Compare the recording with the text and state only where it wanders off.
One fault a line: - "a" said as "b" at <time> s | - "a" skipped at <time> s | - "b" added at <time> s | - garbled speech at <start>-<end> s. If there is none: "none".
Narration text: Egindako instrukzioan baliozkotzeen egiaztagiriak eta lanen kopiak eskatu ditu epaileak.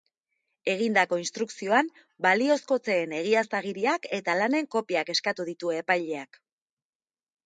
none